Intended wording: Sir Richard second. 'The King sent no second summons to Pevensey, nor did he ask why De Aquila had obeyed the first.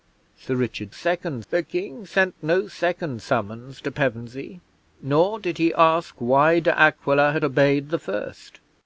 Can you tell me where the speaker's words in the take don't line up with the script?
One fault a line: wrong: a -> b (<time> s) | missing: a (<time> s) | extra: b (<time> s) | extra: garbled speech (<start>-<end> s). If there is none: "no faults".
no faults